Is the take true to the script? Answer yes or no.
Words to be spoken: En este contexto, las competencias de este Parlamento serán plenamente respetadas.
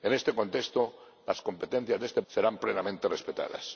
no